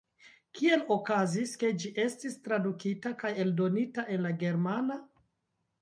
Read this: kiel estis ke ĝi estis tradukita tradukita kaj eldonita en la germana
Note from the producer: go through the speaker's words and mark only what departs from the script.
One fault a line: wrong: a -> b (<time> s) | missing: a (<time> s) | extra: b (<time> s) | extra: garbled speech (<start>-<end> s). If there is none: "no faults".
wrong: estis -> okazis (0.9 s)
missing: tradukita (3.2 s)